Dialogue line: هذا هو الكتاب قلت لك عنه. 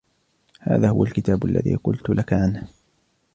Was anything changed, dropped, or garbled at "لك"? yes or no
no